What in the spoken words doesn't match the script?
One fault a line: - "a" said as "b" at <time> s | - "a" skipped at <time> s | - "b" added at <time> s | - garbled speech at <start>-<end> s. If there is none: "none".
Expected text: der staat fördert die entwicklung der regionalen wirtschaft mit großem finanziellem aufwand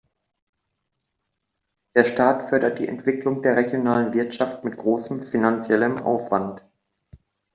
none